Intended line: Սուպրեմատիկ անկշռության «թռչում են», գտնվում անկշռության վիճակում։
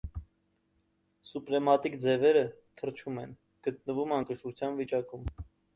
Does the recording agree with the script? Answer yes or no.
no